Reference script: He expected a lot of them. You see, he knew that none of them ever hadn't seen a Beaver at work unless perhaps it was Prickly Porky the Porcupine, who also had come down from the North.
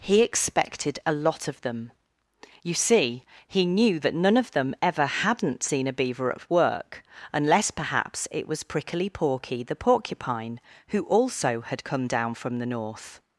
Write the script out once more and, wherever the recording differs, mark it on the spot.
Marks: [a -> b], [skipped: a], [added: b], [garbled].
He expected a lot of them. You see, he knew that none of them ever hadn't seen a Beaver at work unless perhaps it was Prickly Porky the Porcupine, who also had come down from the North.